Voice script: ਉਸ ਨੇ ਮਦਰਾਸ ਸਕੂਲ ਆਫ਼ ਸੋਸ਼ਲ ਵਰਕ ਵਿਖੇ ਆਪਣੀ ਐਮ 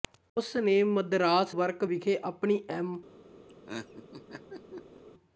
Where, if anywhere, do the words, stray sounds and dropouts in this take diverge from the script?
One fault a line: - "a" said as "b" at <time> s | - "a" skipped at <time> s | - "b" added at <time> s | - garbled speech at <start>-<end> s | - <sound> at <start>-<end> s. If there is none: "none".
- "ਸਕੂਲ ਆਫ਼ ਸੋਸ਼ਲ" skipped at 1.6 s
- laugh at 3.5-5.0 s